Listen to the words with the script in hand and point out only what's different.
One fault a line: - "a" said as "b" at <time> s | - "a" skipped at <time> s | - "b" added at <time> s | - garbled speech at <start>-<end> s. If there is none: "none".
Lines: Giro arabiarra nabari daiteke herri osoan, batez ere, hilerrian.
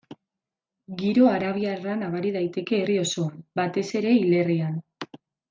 none